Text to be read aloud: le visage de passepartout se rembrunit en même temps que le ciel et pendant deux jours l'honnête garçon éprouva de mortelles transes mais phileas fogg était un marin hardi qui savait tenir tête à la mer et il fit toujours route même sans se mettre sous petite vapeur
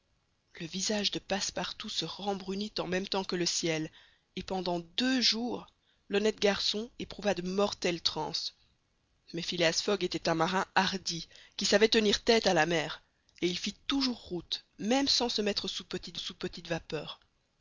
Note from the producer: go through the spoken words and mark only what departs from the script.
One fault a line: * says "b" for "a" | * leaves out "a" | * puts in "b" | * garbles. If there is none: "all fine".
* puts in "sous petite"